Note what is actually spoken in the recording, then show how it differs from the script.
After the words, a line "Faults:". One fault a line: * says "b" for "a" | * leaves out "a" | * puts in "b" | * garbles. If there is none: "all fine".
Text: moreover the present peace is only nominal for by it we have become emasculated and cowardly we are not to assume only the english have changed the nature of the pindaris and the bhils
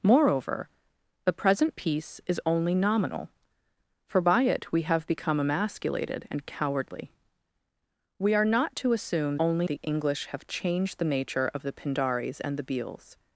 moreover the present peace is only nominal for by it we have become emasculated and cowardly we are not to assume only the english have changed the nature of the pindaris and the bhils
Faults:
all fine